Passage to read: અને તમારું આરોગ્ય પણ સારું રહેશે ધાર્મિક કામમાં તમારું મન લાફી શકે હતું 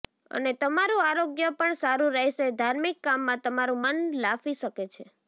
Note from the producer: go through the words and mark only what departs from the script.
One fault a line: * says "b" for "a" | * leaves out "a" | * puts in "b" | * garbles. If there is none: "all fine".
* says "છે" for "હતું"